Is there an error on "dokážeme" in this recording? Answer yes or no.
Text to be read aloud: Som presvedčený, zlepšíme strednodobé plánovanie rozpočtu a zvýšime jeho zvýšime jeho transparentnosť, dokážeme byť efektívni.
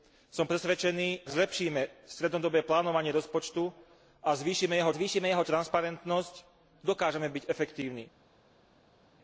no